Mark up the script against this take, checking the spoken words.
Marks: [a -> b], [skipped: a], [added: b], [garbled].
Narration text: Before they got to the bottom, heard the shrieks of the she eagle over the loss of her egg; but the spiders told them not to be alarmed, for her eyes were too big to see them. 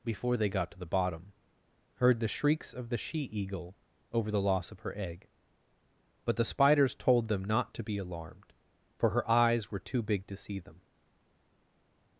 Before they got to the bottom, heard the shrieks of the she eagle over the loss of her egg; but the spiders told them not to be alarmed, for her eyes were too big to see them.